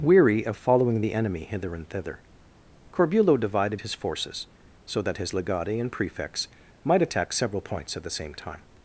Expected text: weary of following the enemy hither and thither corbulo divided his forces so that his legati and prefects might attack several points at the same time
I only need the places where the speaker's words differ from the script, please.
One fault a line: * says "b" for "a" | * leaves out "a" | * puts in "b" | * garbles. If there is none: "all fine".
all fine